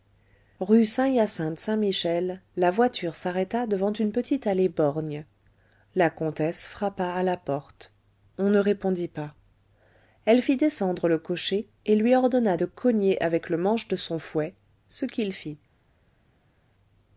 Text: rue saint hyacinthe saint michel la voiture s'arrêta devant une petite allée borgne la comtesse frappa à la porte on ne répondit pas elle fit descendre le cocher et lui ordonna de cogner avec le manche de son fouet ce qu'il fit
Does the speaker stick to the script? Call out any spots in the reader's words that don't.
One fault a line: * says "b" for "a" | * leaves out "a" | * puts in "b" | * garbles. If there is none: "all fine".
all fine